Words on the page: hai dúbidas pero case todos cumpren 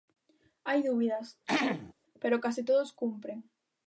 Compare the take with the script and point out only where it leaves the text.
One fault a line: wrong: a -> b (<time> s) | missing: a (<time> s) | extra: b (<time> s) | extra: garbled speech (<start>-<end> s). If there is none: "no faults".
no faults